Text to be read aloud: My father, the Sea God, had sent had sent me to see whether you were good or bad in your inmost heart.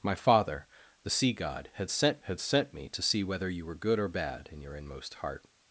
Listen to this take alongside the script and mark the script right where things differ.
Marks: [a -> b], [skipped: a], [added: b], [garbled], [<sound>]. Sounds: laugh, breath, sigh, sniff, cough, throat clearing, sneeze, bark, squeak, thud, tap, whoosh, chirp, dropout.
My father, the Sea God, had sent had sent me to see whether you were good or bad in your inmost heart.